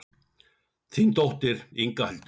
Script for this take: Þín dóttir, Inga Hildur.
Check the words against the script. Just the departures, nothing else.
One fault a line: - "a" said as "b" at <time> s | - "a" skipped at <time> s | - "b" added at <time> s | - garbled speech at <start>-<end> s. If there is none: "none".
none